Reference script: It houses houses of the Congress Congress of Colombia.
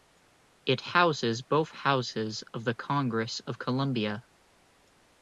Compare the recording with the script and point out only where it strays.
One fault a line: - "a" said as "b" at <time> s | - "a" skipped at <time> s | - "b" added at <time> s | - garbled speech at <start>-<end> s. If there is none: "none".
- "both" added at 1.4 s
- "Congress" skipped at 3.4 s